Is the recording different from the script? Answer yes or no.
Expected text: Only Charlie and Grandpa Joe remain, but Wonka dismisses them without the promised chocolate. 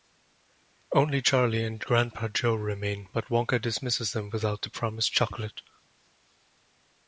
no